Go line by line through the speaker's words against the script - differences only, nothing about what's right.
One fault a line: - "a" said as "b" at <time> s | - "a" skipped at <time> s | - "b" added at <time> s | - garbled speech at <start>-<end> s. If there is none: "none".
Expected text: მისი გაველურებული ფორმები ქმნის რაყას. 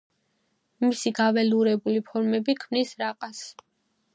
none